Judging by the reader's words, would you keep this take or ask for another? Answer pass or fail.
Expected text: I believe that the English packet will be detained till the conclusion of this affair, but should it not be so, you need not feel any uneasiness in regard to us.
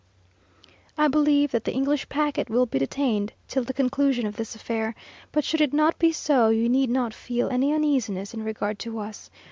pass